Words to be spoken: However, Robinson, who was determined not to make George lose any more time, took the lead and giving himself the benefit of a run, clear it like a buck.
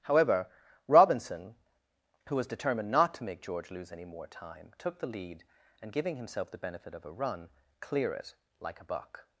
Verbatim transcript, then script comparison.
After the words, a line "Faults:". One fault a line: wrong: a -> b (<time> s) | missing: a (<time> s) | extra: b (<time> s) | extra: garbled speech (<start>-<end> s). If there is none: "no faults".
However, Robinson, who was determined not to make George lose any more time, took the lead and giving himself the benefit of a run, clear it like a buck.
Faults:
no faults